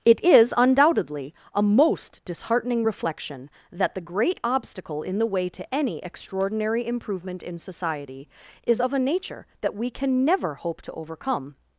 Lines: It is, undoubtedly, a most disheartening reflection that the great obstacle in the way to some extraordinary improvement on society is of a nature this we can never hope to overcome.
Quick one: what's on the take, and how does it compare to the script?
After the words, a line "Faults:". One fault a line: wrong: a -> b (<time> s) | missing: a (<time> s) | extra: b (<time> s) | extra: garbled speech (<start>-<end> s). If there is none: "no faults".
It is, undoubtedly, a most disheartening reflection that the great obstacle in the way to any extraordinary improvement in society is of a nature that we can never hope to overcome.
Faults:
wrong: some -> any (5.7 s)
wrong: on -> in (7.4 s)
wrong: this -> that (9.6 s)